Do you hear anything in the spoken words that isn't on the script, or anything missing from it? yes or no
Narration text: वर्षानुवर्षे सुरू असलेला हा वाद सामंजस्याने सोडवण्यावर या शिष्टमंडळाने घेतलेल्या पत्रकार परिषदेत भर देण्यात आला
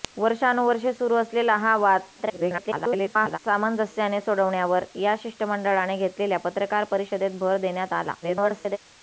yes